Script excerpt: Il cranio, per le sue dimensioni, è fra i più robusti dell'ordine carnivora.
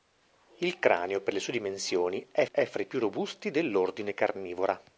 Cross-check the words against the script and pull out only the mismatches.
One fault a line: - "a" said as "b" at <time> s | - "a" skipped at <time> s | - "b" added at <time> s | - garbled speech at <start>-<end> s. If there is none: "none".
- "è" added at 2.5 s